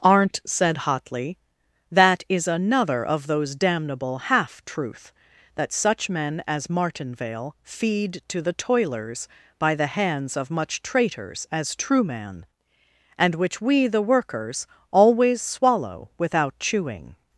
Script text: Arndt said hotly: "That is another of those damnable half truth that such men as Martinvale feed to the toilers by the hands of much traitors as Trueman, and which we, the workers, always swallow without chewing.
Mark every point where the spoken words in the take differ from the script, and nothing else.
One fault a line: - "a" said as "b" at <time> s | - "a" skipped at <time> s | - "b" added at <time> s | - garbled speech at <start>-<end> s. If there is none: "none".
none